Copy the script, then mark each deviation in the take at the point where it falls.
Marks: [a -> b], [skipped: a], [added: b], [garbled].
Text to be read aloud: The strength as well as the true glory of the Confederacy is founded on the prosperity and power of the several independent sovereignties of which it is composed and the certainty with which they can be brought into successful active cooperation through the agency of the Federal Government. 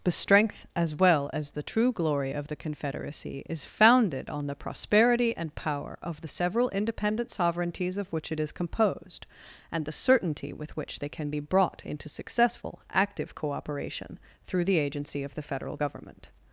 The strength as well as the true glory of the Confederacy is founded on the prosperity and power of the several independent sovereignties of which it is composed and the certainty with which they can be brought into successful active cooperation through the agency of the Federal Government.